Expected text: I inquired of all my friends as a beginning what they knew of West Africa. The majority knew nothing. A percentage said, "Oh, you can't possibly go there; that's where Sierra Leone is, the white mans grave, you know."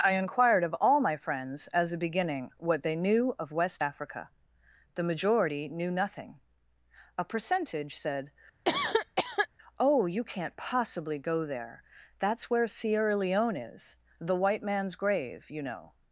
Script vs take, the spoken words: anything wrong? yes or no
no